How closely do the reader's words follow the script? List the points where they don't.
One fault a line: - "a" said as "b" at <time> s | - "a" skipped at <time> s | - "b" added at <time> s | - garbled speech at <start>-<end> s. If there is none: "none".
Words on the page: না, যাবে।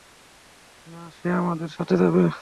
- "সে আমাদের সাথে" added at 1.2 s